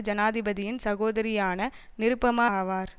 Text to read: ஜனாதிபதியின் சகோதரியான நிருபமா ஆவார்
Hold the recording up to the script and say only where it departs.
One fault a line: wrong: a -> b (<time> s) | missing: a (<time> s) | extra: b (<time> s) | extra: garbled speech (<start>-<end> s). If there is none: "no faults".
no faults